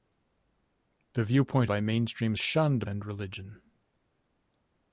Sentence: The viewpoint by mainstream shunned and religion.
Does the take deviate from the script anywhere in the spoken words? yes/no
no